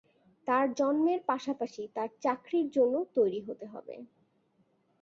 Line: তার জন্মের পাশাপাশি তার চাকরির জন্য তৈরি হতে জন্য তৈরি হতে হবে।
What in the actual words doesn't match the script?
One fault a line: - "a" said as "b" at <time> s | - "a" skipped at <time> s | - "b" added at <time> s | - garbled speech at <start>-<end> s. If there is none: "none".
- "জন্য তৈরি হতে" skipped at 3.7 s